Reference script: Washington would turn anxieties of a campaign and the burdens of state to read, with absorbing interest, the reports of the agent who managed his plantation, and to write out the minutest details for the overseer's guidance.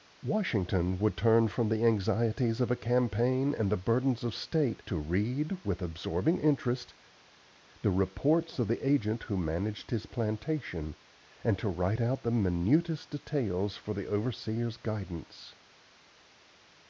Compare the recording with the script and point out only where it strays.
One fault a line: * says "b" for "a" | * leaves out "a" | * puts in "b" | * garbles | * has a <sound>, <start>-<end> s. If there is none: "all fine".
* puts in "from the"